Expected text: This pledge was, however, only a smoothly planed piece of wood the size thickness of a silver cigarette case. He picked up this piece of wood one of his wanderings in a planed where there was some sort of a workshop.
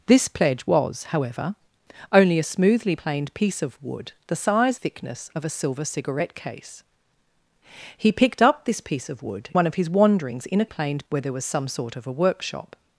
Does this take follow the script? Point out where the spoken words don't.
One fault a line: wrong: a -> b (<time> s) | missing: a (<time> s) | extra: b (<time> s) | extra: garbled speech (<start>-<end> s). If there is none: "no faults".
no faults